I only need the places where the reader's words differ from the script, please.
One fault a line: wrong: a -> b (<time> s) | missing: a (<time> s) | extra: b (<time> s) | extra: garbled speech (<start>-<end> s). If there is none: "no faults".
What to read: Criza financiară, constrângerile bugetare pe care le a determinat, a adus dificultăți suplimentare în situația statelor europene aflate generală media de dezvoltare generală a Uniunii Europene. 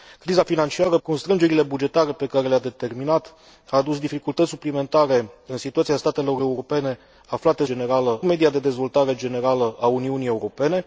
no faults